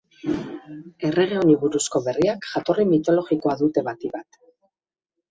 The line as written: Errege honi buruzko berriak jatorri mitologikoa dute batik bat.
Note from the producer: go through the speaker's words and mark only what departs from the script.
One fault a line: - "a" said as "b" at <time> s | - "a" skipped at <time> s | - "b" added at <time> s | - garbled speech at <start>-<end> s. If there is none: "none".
none